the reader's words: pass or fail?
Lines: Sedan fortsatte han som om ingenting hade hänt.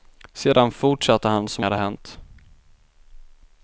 fail